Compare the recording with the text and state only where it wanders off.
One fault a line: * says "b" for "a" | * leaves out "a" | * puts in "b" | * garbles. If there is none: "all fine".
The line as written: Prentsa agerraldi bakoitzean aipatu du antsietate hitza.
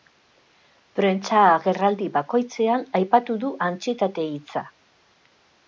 all fine